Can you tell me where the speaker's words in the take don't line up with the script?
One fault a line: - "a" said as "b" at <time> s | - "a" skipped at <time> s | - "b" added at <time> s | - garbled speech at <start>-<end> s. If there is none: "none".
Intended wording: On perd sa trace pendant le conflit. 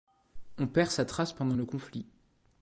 none